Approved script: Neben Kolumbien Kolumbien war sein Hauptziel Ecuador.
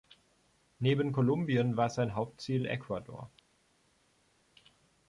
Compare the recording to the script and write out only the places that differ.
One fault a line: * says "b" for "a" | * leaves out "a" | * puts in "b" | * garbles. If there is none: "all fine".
* leaves out "Kolumbien"